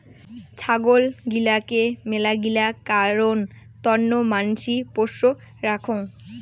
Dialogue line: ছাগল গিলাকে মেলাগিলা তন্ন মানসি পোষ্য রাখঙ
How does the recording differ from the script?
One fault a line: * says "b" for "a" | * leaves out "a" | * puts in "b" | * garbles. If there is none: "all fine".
* puts in "কারণ"